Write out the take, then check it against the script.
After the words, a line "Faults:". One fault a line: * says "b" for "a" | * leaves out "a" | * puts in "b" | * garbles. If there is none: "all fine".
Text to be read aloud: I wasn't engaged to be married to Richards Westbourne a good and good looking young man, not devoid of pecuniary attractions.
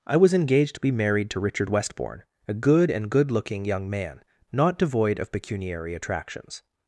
I was engaged to be married to Richard Westbourne a good and good looking young man, not devoid of pecuniary attractions.
Faults:
* says "was" for "wasn't"
* says "Richard" for "Richards"